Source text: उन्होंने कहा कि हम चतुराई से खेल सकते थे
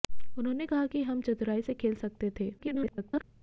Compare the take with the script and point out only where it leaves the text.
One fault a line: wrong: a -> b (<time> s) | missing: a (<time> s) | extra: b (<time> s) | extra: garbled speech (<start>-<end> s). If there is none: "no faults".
extra: garbled speech (2.6-3.2 s)